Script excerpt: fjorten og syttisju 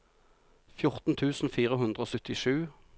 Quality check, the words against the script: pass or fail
fail